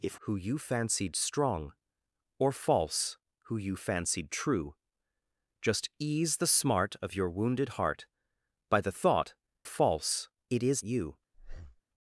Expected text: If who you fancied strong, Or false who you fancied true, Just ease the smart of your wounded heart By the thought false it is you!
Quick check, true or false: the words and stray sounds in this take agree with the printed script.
false